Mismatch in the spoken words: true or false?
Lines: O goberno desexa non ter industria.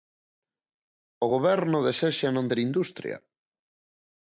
false